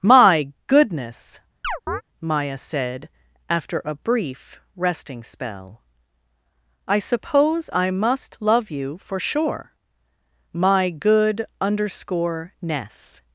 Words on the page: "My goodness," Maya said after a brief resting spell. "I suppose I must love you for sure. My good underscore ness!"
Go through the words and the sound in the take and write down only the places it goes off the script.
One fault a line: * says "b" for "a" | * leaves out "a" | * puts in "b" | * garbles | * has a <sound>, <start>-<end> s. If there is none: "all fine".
* has a chirp, 1.6-2.0 s